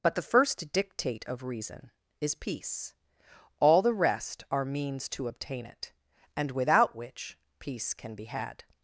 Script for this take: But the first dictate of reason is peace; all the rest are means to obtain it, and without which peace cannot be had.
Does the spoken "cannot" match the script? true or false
false